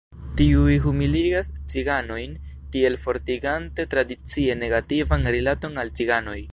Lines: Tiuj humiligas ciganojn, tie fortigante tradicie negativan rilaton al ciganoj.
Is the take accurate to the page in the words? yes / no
no